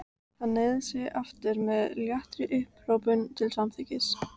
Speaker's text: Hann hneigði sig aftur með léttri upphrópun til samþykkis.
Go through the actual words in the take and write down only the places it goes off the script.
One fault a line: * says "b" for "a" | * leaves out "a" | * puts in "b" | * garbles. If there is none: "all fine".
all fine